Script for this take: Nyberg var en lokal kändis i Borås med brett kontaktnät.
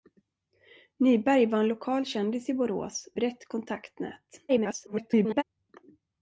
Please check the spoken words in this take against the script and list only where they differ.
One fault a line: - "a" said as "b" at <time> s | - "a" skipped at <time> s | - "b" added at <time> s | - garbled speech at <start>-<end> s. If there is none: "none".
- "med" skipped at 3.1 s
- garbled speech at 4.5-5.4 s